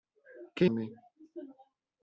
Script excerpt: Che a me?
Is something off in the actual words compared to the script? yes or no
no